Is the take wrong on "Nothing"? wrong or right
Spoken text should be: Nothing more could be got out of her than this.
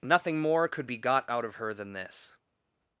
right